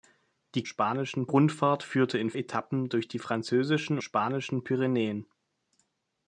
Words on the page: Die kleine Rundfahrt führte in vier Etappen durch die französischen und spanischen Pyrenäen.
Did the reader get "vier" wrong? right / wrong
wrong